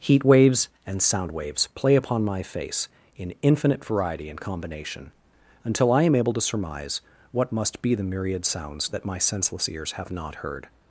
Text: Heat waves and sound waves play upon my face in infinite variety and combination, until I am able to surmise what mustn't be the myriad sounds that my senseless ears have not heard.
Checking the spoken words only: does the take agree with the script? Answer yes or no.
no